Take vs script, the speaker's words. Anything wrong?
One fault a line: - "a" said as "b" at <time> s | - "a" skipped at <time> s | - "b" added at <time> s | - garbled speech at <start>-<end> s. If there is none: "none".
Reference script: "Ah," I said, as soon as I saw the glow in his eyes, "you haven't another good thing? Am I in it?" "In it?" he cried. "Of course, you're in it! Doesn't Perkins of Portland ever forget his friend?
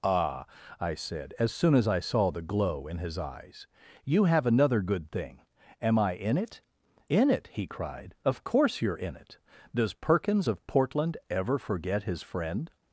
- "haven't" said as "have" at 4.2 s
- "Doesn't" said as "Does" at 9.8 s